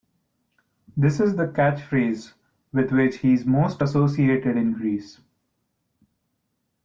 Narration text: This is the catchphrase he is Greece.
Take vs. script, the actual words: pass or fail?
fail